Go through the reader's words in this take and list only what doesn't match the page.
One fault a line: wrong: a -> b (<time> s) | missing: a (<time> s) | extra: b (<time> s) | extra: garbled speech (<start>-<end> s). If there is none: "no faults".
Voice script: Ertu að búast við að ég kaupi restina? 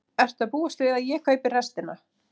no faults